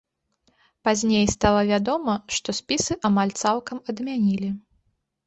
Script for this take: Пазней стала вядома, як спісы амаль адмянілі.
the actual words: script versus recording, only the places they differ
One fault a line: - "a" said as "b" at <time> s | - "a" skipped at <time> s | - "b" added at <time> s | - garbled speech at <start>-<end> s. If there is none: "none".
- "як" said as "што" at 2.4 s
- "цалкам" added at 3.4 s